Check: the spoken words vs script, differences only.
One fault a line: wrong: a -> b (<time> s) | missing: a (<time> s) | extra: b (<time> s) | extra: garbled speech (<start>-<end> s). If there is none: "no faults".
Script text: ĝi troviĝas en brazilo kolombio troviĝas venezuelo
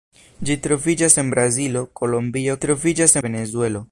no faults